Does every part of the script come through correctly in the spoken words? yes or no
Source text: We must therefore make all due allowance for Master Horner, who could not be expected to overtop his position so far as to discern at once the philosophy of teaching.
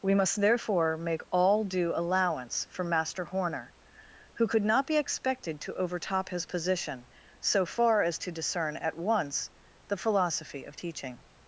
yes